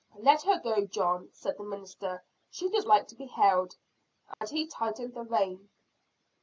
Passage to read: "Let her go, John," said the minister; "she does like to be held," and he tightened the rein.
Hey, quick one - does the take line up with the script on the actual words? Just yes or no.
yes